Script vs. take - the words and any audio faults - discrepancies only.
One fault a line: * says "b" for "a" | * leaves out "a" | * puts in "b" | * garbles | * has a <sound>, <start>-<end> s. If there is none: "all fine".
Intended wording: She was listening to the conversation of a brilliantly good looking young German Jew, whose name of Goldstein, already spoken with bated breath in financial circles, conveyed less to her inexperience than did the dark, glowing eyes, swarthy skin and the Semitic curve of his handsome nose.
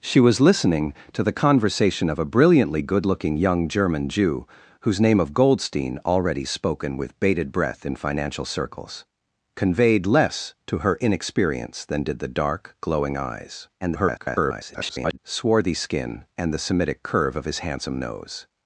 * garbles